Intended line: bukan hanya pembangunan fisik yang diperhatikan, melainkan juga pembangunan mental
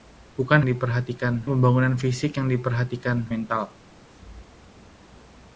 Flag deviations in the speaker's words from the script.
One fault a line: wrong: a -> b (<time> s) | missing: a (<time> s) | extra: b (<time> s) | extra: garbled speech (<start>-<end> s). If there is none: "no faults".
wrong: hanya -> diperhatikan (0.6 s)
missing: melainkan juga pembangunan (3.3 s)